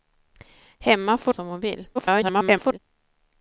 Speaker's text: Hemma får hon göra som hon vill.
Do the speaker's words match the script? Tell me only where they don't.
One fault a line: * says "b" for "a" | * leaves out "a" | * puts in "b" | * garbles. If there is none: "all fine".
* leaves out "hon göra"
* garbles